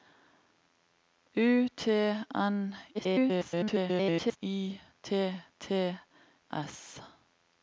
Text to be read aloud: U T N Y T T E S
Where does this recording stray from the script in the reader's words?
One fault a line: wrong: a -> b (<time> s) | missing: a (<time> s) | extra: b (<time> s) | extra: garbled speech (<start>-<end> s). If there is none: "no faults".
extra: garbled speech (2.9-4.4 s)
missing: E (6.0 s)